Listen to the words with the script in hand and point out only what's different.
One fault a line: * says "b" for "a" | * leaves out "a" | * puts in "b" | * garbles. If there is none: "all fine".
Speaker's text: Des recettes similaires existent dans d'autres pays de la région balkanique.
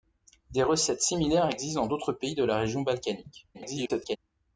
* garbles